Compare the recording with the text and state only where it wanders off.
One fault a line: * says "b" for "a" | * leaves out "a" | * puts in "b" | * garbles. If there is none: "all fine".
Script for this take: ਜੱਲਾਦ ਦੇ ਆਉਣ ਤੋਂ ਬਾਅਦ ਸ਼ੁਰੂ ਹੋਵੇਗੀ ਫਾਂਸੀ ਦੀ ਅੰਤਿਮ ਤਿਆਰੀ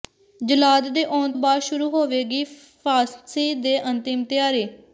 * leaves out "ਤੋਂ"